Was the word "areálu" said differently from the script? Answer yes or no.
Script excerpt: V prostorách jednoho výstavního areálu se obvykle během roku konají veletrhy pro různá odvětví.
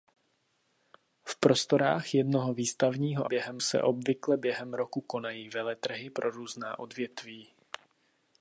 yes